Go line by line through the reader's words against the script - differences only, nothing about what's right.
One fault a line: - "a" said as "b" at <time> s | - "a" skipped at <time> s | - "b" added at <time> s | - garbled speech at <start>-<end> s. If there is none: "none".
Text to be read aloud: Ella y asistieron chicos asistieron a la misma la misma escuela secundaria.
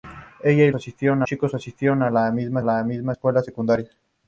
none